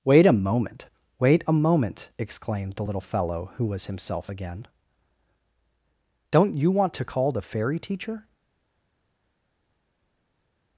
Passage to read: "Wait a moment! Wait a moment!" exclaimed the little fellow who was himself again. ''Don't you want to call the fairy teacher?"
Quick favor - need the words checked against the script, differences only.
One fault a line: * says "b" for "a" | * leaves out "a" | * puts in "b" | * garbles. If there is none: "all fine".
all fine